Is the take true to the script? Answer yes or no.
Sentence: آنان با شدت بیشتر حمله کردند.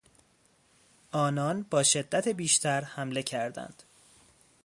yes